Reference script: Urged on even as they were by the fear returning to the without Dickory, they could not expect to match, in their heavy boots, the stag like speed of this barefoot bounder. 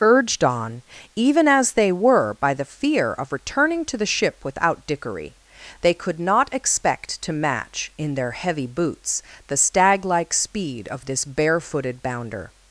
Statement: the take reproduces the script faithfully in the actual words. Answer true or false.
false